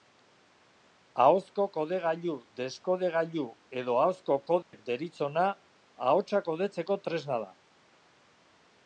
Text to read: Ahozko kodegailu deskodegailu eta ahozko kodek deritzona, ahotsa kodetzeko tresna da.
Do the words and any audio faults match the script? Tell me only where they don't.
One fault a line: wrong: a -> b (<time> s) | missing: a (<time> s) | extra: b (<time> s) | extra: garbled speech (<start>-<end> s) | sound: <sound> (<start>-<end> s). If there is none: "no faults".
wrong: eta -> edo (3.8 s)
sound: dropout (4.6-4.7 s)